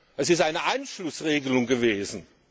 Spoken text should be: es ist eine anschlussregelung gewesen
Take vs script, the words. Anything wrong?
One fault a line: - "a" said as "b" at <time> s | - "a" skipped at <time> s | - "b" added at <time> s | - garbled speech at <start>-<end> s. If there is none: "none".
none